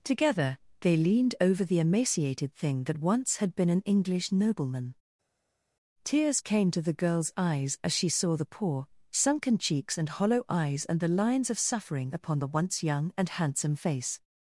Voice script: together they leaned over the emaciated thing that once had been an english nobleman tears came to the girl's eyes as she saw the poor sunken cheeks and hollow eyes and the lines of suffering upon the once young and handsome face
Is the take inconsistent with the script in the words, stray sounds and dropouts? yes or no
no